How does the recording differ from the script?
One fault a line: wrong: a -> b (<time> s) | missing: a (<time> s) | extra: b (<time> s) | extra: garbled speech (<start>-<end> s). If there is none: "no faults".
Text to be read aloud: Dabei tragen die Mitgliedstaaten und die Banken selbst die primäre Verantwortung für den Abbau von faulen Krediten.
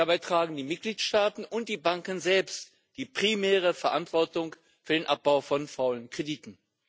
no faults